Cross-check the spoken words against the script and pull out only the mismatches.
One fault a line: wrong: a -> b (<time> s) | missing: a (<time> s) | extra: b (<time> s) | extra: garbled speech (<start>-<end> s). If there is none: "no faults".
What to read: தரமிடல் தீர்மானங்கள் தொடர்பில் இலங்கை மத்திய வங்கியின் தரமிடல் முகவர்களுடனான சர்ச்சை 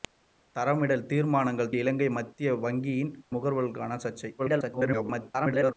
missing: தொடர்பில் (1.7 s)
missing: தரமிடல் (3.1 s)
extra: garbled speech (4.4-5.7 s)